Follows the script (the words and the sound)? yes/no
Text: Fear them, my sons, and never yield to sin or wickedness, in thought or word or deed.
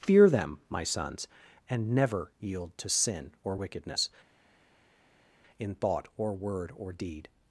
yes